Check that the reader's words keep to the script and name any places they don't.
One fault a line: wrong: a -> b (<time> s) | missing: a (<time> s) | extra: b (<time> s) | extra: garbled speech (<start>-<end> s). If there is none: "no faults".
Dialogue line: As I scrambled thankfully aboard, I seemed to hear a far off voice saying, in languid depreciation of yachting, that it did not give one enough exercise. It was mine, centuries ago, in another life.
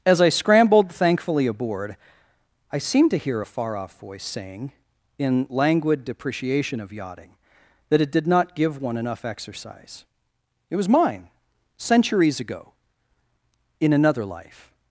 no faults